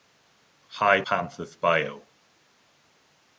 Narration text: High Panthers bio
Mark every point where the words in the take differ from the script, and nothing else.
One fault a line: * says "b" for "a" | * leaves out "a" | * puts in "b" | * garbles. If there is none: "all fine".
all fine